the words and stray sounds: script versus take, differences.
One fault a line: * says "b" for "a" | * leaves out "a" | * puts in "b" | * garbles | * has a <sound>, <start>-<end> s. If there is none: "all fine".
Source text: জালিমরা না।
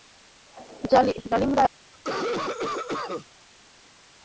* has a cough, 1.9-3.3 s